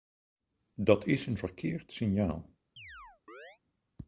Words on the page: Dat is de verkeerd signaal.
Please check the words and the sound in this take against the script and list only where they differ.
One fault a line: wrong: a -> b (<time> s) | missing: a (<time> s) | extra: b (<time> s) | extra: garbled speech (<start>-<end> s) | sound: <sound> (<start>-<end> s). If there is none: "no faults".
wrong: de -> een (1.2 s)
sound: chirp (2.8-3.6 s)